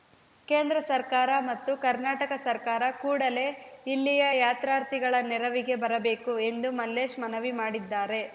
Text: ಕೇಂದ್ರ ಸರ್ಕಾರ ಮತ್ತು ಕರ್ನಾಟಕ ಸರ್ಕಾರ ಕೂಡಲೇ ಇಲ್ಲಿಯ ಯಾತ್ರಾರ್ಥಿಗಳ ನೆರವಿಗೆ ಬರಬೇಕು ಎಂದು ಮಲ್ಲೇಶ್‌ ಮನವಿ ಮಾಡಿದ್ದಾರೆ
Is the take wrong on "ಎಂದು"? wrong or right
right